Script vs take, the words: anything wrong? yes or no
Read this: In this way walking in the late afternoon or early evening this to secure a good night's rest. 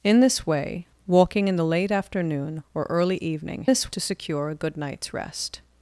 no